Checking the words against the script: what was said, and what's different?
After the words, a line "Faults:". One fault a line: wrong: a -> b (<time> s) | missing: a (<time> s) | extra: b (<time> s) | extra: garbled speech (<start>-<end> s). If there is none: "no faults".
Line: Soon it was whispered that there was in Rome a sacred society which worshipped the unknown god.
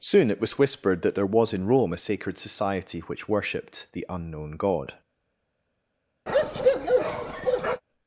Soon it was whispered that there was in Rome a sacred society which worshipped the unknown god.
Faults:
no faults